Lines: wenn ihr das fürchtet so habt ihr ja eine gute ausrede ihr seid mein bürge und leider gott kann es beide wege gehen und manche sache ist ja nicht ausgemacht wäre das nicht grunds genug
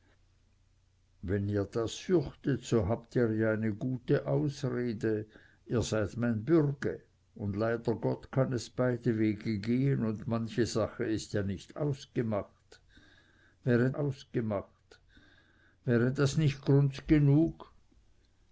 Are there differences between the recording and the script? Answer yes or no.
yes